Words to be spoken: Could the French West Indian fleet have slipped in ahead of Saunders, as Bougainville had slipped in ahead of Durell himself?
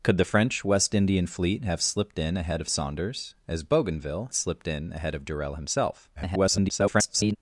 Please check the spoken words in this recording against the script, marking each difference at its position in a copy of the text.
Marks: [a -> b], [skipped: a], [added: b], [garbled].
Could the French West Indian fleet have slipped in ahead of Saunders, as Bougainville [skipped: had] slipped in ahead of Durell himself? [garbled]